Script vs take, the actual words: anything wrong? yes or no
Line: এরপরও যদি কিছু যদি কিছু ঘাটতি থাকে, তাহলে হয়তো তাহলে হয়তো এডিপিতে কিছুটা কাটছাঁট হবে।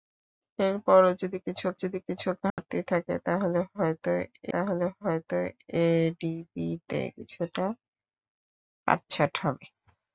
no